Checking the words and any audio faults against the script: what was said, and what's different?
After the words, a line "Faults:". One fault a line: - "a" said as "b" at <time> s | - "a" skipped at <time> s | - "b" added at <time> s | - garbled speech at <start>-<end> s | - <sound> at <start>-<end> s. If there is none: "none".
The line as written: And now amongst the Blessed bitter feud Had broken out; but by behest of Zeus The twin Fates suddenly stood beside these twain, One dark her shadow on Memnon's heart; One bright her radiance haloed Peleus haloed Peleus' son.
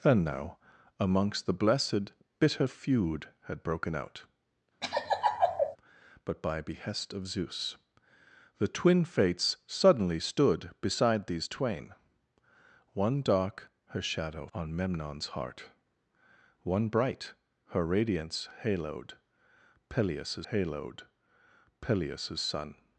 And now amongst the Blessed bitter feud Had broken out; but by behest of Zeus The twin Fates suddenly stood beside these twain, One dark her shadow on Memnon's heart; One bright her radiance haloed Peleus haloed Peleus' son.
Faults:
- laugh at 4.8-5.8 s